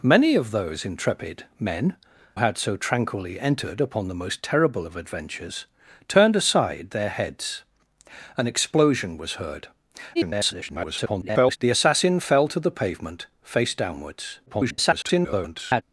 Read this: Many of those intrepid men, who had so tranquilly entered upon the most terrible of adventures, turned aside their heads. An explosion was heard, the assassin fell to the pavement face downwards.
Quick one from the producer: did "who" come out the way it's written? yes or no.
no